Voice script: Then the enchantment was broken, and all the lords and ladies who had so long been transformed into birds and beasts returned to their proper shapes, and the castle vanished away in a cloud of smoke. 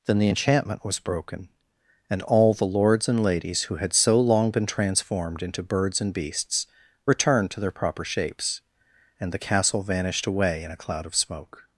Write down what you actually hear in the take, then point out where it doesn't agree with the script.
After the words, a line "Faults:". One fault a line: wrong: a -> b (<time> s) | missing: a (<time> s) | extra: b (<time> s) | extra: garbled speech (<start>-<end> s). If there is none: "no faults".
Then the enchantment was broken, and all the lords and ladies who had so long been transformed into birds and beasts returned to their proper shapes, and the castle vanished away in a cloud of smoke.
Faults:
no faults